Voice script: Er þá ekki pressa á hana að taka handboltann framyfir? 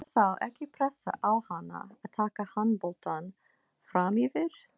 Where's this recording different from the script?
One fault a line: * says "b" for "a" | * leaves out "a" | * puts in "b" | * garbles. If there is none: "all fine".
all fine